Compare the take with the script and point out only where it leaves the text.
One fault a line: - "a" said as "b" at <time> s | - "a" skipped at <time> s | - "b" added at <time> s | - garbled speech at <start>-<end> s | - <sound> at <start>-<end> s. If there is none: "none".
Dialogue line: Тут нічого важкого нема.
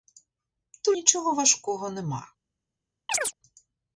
- chirp at 3.1-3.3 s